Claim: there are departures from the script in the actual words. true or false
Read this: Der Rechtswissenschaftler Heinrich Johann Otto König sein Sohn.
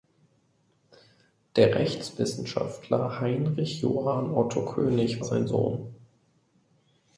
false